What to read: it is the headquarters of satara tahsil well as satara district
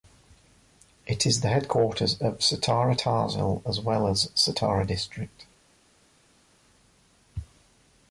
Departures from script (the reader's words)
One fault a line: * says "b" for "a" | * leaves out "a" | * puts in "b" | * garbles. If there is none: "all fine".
* puts in "as"